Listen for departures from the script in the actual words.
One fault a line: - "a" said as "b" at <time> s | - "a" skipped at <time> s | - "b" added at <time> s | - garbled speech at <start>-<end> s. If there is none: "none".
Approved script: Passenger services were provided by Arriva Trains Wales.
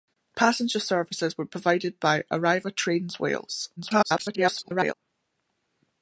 - garbled speech at 3.8-4.9 s